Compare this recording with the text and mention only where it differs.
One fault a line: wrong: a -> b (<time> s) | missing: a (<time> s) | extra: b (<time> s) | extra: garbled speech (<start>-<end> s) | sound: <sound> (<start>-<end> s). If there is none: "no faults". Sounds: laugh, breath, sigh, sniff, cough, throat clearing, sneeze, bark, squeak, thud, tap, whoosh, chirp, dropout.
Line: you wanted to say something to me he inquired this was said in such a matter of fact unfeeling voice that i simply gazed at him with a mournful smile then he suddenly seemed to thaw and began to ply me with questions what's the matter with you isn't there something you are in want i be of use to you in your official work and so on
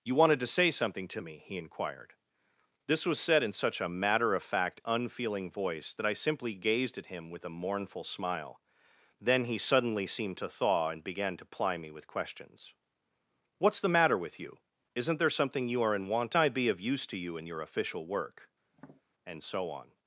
sound: tap (18.7-19.0 s)